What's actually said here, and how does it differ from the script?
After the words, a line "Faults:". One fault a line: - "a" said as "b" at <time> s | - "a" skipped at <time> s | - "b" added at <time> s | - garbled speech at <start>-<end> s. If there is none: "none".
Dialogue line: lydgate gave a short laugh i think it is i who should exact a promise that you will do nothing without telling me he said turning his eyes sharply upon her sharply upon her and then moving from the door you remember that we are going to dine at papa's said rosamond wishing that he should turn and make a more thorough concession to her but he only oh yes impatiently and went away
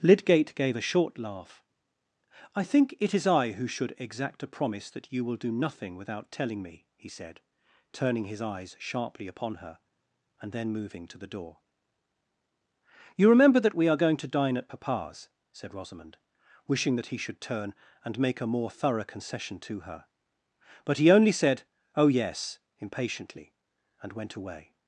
lydgate gave a short laugh i think it is i who should exact a promise that you will do nothing without telling me he said turning his eyes sharply upon her and then moving to the door you remember that we are going to dine at papa's said rosamond wishing that he should turn and make a more thorough concession to her but he only said oh yes impatiently and went away
Faults:
- "sharply upon her" skipped at 9.8 s
- "from" said as "to" at 11.1 s
- "said" added at 21.3 s